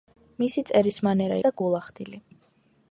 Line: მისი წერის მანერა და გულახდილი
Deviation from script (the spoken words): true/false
false